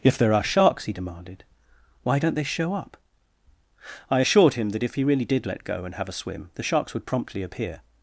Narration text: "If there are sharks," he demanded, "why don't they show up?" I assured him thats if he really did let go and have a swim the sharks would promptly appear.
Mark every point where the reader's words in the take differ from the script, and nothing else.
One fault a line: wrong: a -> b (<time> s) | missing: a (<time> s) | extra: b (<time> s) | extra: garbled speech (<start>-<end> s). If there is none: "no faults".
wrong: thats -> that (4.7 s)